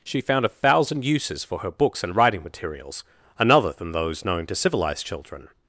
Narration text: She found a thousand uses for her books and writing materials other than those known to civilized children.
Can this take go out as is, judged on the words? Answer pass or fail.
fail